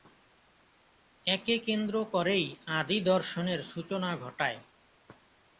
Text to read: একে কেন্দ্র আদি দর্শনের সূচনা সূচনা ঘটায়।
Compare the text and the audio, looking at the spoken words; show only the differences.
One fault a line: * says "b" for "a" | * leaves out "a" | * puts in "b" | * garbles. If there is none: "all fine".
* puts in "করেই"
* leaves out "সূচনা"